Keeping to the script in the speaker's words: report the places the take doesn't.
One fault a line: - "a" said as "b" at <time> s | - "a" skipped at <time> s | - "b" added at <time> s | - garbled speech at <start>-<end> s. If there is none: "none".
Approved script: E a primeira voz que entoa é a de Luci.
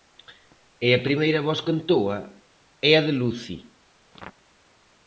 none